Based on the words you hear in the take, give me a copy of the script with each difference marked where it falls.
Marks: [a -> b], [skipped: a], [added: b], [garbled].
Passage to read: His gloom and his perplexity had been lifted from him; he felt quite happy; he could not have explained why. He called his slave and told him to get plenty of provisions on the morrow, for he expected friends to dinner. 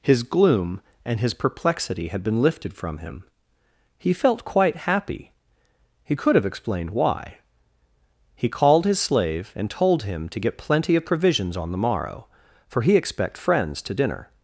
His gloom and his perplexity had been lifted from him; he felt quite happy; he could [skipped: not] have explained why. He called his slave and told him to get plenty of provisions on the morrow, for he [expected -> expect] friends to dinner.